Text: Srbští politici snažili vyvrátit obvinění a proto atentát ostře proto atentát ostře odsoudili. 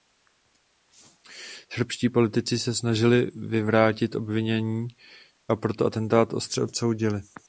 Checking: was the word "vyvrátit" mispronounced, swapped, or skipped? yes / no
no